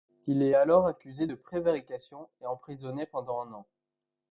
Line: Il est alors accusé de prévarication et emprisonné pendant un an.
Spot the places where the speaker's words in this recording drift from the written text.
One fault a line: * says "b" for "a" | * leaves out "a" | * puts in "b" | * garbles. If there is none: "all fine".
all fine